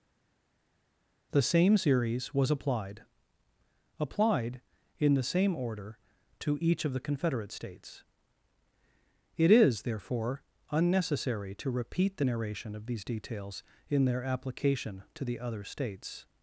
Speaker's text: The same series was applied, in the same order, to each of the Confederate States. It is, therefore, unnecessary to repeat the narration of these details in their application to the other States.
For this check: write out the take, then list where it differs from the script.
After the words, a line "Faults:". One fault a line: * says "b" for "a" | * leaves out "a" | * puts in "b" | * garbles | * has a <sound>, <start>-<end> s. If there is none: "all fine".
The same series was applied applied, in the same order, to each of the Confederate States. It is, therefore, unnecessary to repeat the narration of these details in their application to the other States.
Faults:
* puts in "applied"